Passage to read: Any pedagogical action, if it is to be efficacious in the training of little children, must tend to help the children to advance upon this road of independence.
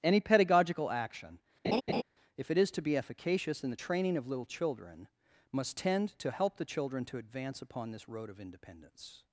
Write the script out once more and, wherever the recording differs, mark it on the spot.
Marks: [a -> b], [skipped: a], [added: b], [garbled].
Any pedagogical action, if it is to be efficacious in the training of little children, must tend to help the children to advance upon this road of independence.